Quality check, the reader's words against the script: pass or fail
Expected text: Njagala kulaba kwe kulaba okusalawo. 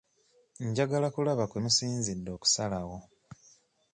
fail